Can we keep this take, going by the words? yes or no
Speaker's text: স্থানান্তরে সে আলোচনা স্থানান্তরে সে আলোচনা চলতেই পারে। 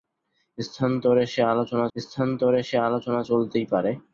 yes